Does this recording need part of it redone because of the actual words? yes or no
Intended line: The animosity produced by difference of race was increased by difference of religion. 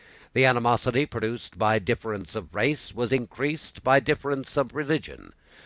no